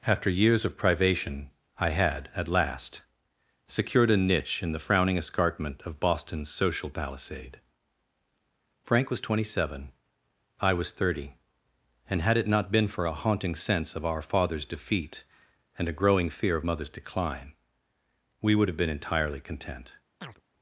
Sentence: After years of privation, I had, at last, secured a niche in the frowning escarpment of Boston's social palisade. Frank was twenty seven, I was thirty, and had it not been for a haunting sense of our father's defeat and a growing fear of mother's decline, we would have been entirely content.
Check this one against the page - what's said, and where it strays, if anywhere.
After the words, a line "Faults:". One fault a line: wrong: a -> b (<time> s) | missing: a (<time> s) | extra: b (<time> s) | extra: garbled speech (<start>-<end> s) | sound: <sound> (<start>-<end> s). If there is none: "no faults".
After years of privation, I had, at last, secured a niche in the frowning escarpment of Boston's social palisade. Frank was twenty seven, I was thirty, and had it not been for a haunting sense of our father's defeat and a growing fear of mother's decline, we would have been entirely content.
Faults:
sound: chirp (20.2-20.4 s)